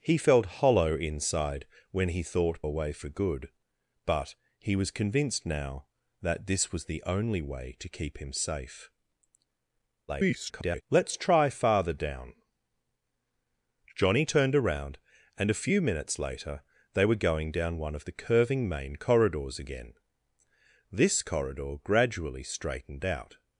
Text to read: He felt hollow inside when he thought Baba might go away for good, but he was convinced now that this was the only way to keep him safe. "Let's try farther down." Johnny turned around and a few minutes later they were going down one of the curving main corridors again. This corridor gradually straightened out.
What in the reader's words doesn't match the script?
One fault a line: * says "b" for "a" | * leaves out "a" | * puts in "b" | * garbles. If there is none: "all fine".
* leaves out "Baba might go"
* garbles